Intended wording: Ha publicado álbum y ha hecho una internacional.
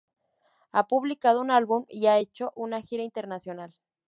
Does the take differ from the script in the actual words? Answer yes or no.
yes